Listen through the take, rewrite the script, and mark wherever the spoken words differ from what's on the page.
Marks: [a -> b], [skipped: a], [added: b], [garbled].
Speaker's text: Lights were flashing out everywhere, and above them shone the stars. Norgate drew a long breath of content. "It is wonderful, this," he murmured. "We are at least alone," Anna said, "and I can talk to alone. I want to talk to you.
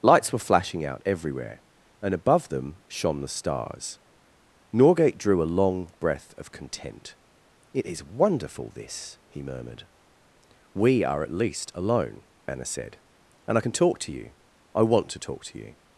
Lights were flashing out everywhere, and above them shone the stars. Norgate drew a long breath of content. "It is wonderful, this," he murmured. "We are at least alone," Anna said, "and I can talk to [alone. -> you] I want to talk to you.